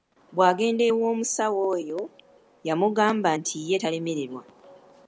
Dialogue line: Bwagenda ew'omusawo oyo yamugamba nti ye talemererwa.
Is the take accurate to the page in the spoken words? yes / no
yes